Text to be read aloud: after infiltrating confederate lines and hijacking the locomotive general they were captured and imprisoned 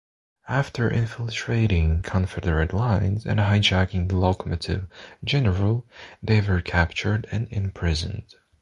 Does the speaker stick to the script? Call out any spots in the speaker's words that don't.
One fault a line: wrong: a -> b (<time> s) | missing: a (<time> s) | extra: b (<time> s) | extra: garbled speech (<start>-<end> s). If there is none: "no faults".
no faults